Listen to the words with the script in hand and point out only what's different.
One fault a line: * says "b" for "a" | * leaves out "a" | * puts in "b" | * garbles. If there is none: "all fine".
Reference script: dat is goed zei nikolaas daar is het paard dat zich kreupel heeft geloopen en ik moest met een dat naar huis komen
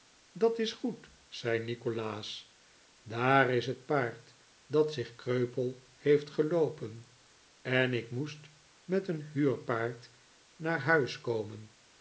* says "huurpaard" for "dat"